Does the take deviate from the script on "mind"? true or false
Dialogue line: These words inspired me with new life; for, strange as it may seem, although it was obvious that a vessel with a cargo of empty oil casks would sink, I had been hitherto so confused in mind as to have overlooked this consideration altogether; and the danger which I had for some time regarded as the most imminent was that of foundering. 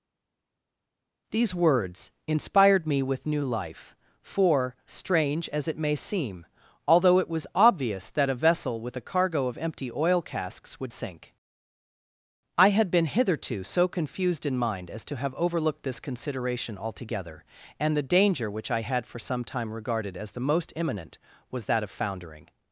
false